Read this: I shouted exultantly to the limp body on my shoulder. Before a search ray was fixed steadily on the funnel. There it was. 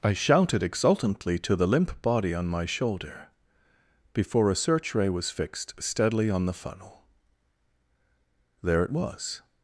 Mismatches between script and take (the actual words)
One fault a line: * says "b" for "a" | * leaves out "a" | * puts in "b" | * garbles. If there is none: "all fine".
all fine